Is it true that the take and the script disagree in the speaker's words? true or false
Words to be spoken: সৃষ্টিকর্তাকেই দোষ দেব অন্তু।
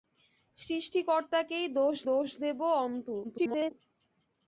true